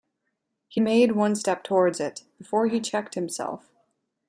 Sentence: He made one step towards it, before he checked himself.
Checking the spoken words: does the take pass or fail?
pass